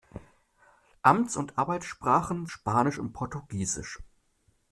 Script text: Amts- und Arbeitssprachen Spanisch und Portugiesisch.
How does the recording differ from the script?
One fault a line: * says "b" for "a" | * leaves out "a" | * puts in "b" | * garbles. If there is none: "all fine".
all fine